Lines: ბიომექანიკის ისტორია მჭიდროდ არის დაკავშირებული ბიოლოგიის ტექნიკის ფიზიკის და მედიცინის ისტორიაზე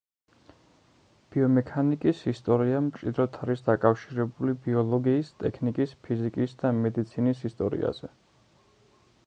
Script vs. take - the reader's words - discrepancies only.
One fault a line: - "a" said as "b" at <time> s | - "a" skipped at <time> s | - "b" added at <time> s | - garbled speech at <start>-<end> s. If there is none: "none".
none